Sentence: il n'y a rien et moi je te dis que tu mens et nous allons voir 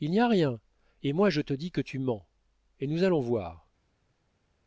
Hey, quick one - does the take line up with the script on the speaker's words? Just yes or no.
yes